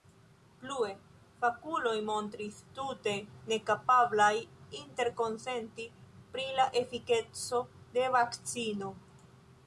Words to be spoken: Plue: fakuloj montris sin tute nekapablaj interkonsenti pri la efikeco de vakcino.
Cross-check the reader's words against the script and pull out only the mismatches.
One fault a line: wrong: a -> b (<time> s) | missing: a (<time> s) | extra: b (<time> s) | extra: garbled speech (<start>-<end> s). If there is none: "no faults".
missing: sin (2.5 s)